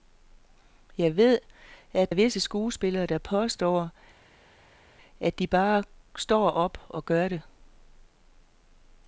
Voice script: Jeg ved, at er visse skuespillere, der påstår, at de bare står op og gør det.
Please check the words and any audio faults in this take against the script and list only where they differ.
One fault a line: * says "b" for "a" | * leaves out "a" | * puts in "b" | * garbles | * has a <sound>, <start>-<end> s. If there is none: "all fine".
all fine